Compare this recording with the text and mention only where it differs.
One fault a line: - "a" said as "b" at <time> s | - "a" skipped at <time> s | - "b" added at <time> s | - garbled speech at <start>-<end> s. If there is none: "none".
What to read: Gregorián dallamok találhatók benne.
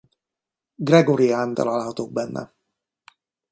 - "dallamok" skipped at 1.5 s